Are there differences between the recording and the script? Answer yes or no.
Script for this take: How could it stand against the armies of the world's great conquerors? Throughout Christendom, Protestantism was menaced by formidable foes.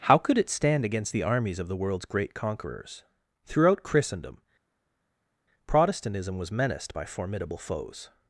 no